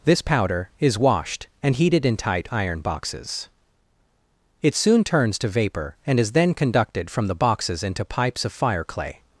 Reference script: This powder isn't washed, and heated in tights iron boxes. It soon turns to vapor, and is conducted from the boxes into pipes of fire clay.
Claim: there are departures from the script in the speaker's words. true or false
true